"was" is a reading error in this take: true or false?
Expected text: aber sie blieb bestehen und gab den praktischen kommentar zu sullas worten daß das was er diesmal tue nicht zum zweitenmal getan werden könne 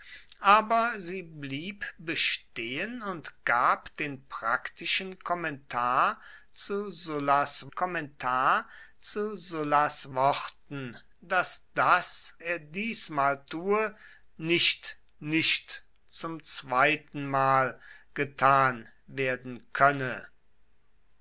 true